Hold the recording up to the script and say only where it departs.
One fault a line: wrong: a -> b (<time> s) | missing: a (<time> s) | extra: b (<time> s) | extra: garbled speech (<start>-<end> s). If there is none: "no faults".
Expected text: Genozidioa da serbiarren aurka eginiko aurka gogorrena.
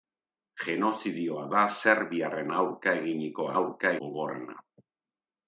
no faults